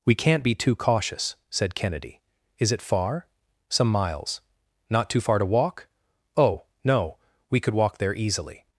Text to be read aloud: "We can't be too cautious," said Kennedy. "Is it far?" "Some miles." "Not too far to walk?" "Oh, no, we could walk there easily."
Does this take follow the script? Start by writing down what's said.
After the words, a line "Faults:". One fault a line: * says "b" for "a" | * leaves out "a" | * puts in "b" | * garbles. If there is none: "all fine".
"We can't be too cautious," said Kennedy. "Is it far?" "Some miles." "Not too far to walk?" "Oh, no, we could walk there easily."
Faults:
all fine